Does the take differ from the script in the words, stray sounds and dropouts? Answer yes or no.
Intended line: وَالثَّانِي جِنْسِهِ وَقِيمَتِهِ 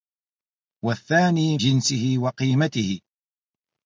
no